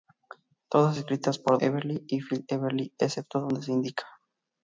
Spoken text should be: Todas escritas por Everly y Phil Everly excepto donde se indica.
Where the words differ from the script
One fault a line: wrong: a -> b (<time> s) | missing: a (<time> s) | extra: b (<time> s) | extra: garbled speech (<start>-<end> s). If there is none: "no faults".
no faults